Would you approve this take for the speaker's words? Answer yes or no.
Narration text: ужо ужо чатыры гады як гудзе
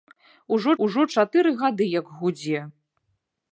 yes